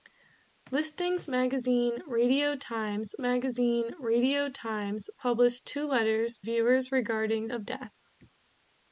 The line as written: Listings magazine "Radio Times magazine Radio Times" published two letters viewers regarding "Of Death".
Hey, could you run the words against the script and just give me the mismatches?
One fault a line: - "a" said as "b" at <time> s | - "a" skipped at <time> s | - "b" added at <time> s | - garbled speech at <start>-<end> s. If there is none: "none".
none